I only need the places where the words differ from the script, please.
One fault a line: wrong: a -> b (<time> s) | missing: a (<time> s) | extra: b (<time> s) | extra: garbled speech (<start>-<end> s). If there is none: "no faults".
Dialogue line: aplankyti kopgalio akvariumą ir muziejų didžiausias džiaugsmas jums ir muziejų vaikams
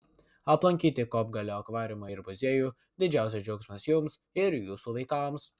wrong: muziejų -> jūsų (4.6 s)